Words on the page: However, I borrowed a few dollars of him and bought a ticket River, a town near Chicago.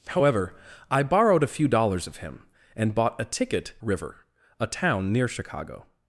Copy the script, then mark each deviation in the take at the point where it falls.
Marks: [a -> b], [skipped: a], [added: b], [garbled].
However, I borrowed a few dollars of him and bought a ticket River, a town near Chicago.